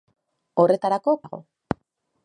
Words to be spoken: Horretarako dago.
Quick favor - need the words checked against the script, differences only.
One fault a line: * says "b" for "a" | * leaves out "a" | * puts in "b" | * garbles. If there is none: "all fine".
all fine